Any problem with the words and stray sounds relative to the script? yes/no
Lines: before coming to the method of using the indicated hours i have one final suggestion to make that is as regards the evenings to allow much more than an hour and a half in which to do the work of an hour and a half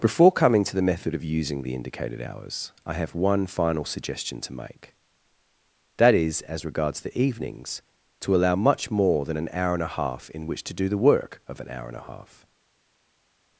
no